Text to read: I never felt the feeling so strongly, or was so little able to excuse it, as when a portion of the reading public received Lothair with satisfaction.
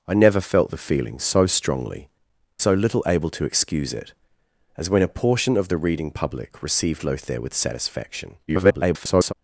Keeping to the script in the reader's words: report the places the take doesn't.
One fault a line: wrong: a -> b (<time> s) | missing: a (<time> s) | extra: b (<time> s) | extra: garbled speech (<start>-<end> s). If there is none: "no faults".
missing: or was (2.1 s)
extra: garbled speech (8.5-9.3 s)